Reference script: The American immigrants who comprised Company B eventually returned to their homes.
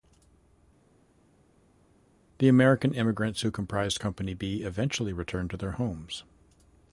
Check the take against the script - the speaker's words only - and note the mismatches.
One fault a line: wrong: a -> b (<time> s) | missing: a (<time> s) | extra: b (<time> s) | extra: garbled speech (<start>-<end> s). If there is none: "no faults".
no faults